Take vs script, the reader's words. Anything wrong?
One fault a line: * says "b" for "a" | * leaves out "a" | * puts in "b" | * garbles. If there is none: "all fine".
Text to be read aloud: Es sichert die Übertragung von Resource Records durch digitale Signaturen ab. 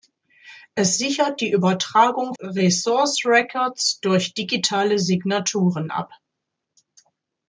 * leaves out "von"